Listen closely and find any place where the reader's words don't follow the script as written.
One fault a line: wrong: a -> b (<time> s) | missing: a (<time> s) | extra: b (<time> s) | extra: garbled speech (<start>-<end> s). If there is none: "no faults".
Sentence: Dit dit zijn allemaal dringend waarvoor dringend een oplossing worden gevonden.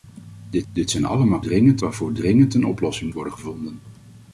no faults